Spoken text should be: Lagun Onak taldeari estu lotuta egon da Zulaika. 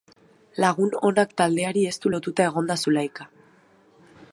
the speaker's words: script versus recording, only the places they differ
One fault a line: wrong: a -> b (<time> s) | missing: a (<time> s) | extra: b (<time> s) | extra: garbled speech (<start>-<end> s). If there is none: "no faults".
no faults